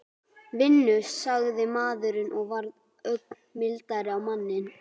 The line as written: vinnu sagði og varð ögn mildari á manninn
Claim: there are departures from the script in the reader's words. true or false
true